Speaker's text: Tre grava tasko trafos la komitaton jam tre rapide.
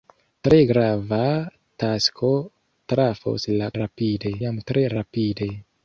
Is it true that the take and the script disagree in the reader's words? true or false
true